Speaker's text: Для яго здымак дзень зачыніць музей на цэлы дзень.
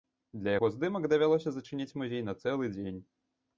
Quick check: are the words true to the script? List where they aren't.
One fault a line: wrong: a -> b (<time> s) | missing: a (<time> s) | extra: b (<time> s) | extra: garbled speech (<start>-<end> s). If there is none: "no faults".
wrong: дзень -> давялося (1.1 s)